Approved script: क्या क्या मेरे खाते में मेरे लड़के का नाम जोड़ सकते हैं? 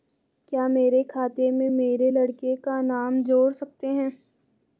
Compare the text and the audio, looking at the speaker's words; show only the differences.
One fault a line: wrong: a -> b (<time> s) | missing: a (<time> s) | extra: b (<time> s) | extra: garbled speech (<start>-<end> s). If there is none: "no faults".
missing: क्या (0.7 s)